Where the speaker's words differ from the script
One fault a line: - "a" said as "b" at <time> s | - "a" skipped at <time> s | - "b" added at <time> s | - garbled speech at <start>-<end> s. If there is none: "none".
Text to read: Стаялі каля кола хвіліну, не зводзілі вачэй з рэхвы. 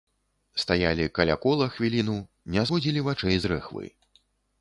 none